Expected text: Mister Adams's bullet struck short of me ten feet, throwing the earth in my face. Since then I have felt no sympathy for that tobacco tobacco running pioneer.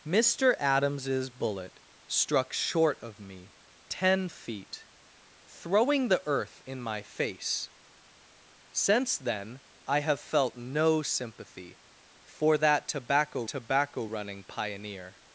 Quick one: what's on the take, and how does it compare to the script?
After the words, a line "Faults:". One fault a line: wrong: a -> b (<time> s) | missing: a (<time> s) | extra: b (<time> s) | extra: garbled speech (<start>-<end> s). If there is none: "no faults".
Mister Adams's bullet struck short of me ten feet, throwing the earth in my face. Since then I have felt no sympathy for that tobacco tobacco running pioneer.
Faults:
no faults